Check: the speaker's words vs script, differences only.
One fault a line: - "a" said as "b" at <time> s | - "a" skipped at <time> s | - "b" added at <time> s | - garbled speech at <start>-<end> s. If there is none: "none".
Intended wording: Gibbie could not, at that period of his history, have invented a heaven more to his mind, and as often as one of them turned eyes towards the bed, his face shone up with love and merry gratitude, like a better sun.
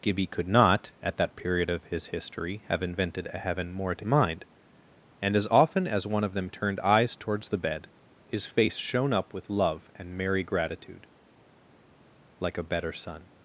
- "his" skipped at 4.0 s